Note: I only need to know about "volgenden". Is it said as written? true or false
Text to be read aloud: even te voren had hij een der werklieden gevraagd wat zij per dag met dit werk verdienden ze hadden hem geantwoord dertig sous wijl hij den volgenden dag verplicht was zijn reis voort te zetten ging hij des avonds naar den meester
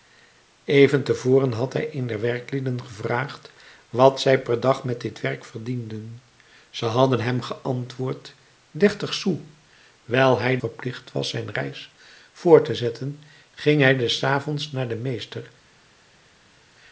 false